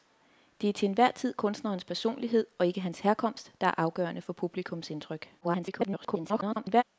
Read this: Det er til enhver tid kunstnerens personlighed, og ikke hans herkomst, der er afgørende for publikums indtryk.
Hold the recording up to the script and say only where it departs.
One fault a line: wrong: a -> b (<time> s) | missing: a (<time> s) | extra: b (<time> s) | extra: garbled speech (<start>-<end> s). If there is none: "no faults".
extra: garbled speech (5.4-6.8 s)